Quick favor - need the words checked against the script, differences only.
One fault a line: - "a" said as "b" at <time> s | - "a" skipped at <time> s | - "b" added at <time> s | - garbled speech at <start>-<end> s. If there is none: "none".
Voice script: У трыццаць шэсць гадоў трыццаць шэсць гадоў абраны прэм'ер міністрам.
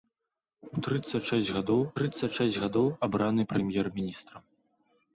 none